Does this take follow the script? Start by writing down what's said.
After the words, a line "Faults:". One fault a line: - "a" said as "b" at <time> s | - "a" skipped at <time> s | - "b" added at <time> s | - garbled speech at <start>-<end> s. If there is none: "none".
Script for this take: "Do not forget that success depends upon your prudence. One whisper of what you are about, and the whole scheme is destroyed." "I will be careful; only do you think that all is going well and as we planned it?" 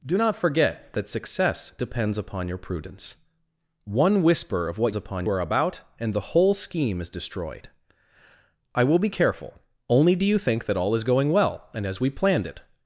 "Do not forget that success depends upon your prudence. One whisper of what upon are about, and the whole scheme is destroyed." "I will be careful; only do you think that all is going well and as we planned it?"
Faults:
- "you" said as "upon" at 4.9 s